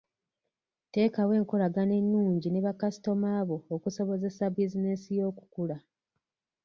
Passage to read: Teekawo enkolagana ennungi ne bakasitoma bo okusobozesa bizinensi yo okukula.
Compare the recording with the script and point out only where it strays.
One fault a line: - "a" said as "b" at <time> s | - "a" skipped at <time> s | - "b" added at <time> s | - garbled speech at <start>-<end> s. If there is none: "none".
none